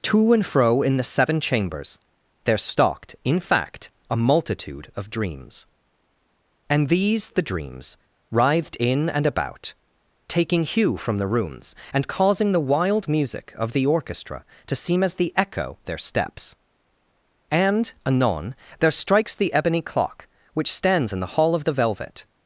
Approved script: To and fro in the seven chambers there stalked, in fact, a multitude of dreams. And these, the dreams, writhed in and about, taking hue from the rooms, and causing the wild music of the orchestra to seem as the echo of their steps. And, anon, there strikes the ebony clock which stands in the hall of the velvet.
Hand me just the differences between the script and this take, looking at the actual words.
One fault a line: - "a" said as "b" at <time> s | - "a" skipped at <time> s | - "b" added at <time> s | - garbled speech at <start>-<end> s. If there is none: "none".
- "of" skipped at 15.8 s